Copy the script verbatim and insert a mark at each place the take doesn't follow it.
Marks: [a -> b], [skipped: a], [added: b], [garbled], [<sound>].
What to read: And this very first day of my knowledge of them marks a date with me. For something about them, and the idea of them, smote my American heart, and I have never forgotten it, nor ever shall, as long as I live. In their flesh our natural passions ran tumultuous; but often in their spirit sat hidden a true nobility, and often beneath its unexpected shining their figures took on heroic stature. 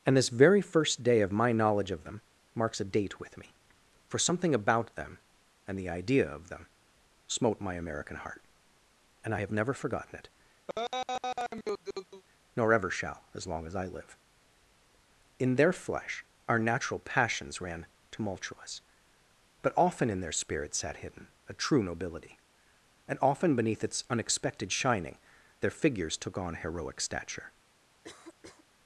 And this very first day of my knowledge of them marks a date with me. For something about them, and the idea of them, smote my American heart, and I have never forgotten it, [laugh] nor ever shall, as long as I live. In their flesh our natural passions ran tumultuous; but often in their spirit sat hidden a true nobility, and often beneath its unexpected shining their figures took on heroic stature. [cough]